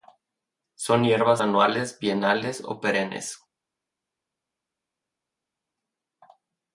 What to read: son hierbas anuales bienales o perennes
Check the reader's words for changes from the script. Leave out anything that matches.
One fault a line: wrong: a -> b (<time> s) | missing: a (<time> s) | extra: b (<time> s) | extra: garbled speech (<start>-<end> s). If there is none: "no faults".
no faults